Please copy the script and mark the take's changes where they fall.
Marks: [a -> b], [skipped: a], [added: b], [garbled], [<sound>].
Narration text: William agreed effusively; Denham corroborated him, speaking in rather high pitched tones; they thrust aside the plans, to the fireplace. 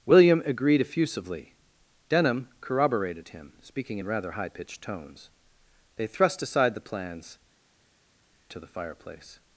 William agreed effusively; Denham corroborated him, speaking in rather high pitched tones; they thrust aside the plans, to the fireplace.